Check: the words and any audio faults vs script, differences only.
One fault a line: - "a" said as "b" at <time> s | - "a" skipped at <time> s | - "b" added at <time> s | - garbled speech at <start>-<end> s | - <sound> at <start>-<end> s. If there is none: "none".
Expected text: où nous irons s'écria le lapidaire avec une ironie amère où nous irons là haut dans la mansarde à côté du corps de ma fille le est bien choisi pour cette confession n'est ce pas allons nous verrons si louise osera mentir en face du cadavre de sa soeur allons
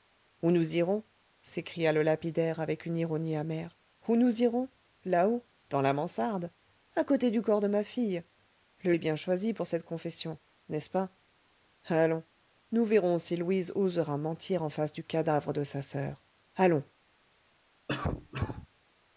- cough at 17.9-18.7 s